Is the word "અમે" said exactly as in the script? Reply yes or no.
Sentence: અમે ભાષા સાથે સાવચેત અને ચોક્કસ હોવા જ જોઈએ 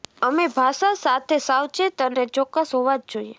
yes